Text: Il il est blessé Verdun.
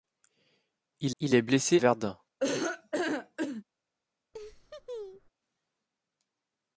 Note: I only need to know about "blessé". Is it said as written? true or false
true